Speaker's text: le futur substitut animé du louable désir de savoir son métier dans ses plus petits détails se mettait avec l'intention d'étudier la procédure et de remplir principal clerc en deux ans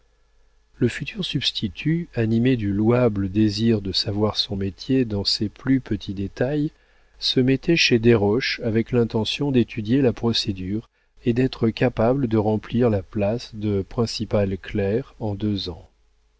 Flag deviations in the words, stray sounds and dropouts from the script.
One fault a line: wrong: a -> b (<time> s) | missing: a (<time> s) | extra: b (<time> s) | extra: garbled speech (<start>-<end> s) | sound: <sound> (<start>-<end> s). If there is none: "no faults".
extra: chez desroches (7.8 s)
extra: d'être capable (11.3 s)
extra: la place de (12.9 s)